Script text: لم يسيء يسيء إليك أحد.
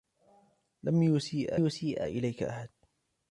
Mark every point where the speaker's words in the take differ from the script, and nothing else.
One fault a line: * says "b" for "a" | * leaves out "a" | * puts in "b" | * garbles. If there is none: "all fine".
all fine